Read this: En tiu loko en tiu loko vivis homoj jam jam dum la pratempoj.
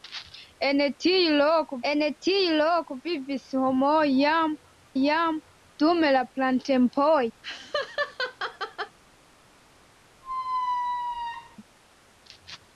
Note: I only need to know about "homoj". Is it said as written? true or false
true